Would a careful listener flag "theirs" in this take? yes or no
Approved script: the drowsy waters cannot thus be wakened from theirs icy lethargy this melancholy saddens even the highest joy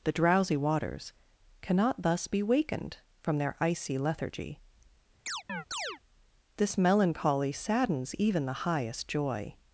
yes